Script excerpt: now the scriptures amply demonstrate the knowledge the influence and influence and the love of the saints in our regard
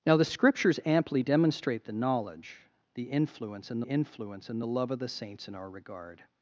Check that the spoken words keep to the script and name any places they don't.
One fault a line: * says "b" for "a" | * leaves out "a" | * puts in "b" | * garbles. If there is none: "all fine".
all fine